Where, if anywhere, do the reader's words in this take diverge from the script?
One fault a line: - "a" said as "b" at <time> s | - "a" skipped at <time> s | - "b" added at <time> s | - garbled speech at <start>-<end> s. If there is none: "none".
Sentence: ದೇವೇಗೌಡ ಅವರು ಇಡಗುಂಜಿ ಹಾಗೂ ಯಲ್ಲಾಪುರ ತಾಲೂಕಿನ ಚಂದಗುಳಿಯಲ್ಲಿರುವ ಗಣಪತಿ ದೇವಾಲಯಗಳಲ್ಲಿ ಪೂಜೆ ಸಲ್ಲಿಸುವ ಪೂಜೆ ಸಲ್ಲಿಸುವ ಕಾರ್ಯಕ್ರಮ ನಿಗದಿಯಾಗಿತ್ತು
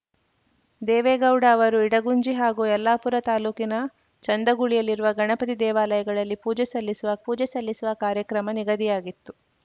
none